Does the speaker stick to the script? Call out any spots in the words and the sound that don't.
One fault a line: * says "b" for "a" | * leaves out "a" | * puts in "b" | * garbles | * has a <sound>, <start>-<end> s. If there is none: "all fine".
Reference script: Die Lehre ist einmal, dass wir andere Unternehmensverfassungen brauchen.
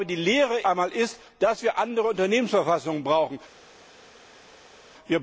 all fine